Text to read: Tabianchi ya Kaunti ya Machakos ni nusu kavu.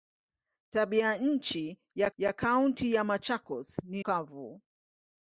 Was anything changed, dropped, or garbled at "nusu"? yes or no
yes